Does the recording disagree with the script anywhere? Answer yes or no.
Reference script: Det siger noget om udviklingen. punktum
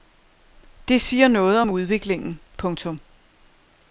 no